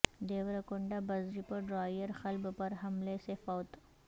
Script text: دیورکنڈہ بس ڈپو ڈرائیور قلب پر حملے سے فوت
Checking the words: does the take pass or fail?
pass